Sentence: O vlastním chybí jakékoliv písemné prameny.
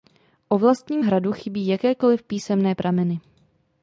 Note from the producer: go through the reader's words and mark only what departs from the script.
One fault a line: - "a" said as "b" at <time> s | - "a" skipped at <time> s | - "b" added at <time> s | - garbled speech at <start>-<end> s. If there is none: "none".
- "hradu" added at 1.0 s